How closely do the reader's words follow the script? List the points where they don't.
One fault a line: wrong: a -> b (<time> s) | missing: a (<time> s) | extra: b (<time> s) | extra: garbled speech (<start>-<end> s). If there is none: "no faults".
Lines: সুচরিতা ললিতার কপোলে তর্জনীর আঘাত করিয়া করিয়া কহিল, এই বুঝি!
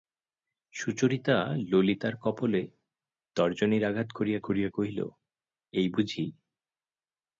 no faults